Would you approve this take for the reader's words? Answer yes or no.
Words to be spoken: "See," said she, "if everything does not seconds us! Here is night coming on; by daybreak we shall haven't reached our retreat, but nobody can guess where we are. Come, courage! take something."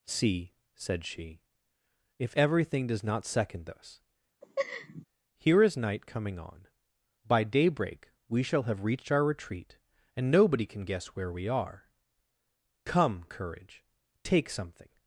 no